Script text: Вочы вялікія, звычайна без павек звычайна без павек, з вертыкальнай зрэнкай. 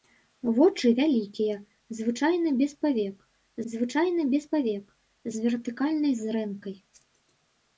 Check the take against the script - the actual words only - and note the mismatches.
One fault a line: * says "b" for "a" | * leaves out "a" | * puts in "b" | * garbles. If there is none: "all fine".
all fine